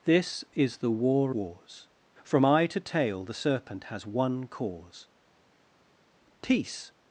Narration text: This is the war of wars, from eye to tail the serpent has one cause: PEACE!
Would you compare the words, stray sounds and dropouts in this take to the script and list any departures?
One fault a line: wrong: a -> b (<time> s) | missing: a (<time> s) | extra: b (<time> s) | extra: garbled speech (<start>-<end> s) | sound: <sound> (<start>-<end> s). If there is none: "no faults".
missing: of (1.4 s)